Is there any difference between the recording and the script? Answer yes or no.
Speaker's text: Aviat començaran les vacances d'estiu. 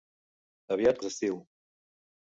yes